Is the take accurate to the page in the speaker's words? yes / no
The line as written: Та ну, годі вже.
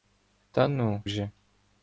no